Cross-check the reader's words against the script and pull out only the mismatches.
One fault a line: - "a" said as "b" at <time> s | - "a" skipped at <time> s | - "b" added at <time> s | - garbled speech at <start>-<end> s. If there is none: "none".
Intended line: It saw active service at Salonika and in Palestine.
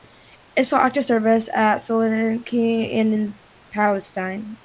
none